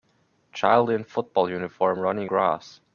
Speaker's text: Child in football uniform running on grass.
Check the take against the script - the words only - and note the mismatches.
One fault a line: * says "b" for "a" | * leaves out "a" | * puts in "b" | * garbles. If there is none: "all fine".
* leaves out "on"